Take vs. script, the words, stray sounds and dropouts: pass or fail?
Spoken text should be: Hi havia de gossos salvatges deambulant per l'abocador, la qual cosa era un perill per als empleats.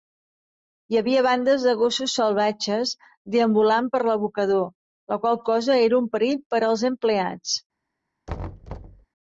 fail